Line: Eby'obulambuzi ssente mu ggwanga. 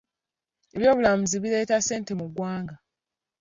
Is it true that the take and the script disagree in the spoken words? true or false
true